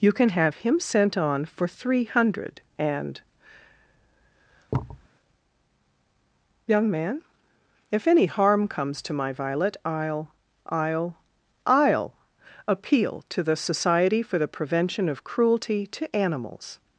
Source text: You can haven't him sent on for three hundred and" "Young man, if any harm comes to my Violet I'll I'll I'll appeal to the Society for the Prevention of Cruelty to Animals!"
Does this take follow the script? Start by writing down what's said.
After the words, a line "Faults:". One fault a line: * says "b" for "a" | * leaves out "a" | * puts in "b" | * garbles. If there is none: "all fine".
You can have him sent on for three hundred and" "Young man, if any harm comes to my Violet I'll I'll I'll appeal to the Society for the Prevention of Cruelty to Animals!"
Faults:
* says "have" for "haven't"